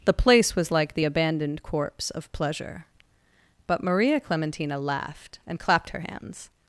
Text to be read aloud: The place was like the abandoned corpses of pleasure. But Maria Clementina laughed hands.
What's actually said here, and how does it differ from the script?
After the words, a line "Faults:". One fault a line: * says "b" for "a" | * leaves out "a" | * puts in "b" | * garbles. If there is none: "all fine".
The place was like the abandoned corpse of pleasure. But Maria Clementina laughed and clapped her hands.
Faults:
* says "corpse" for "corpses"
* puts in "and clapped her"